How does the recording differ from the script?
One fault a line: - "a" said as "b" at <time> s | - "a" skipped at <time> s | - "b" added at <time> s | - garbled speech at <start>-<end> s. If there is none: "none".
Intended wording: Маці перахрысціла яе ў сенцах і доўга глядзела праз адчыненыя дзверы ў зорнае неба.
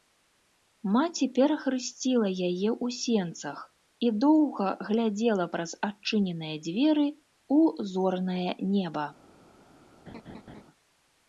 none